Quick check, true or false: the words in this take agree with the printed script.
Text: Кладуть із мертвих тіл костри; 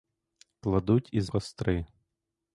false